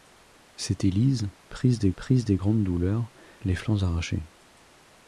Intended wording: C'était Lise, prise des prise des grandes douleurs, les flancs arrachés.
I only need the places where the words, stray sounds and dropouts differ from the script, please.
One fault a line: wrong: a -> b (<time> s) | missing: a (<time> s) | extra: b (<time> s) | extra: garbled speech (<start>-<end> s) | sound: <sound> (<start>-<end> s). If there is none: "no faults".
no faults